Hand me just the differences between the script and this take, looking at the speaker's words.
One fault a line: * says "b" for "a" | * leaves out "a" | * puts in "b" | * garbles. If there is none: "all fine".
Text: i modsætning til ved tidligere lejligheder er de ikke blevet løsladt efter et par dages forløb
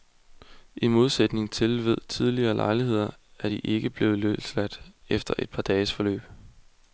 all fine